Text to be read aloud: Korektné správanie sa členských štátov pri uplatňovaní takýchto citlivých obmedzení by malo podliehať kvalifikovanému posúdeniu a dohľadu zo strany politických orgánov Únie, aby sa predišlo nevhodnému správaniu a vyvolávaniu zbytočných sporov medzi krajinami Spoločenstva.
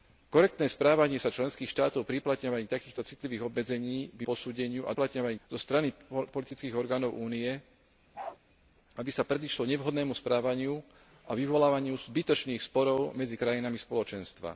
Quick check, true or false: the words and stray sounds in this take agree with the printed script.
false